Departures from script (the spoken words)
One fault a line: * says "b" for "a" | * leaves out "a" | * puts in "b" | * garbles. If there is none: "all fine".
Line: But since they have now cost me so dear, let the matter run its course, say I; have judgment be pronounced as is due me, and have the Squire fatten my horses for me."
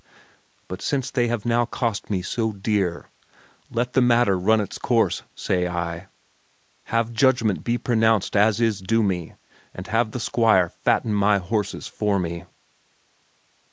all fine